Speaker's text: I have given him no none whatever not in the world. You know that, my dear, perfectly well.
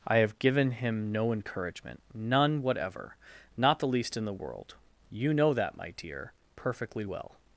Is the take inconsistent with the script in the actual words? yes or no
yes